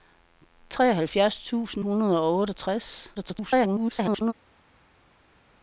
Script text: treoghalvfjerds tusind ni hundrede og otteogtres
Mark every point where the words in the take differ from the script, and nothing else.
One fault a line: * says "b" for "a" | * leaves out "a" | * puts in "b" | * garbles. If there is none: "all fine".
* leaves out "ni"
* garbles